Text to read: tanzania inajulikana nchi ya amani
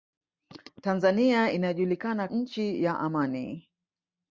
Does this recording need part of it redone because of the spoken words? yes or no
no